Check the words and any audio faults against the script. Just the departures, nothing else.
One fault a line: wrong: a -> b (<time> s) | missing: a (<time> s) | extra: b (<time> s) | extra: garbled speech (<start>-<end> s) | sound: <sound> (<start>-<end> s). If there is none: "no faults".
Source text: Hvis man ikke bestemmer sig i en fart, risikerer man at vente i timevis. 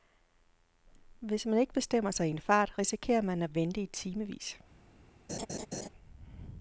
sound: laugh (5.3-5.9 s)